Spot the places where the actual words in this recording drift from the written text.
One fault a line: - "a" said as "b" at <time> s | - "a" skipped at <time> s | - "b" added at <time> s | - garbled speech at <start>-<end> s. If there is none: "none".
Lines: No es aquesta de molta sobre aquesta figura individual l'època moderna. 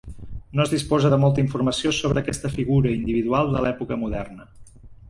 - "aquesta" said as "disposa" at 0.7 s
- "informació" added at 1.5 s
- "de" added at 3.6 s